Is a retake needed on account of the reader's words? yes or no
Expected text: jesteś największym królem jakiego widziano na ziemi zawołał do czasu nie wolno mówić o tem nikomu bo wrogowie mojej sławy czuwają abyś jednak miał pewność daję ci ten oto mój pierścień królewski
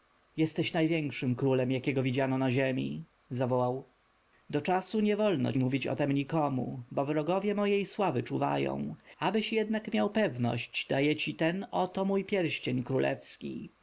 no